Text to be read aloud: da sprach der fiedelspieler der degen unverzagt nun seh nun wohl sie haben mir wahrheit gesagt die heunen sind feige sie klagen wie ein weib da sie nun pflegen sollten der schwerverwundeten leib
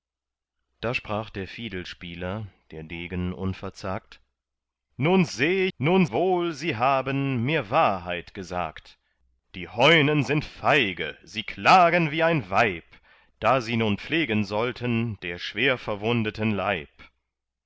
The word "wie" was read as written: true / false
true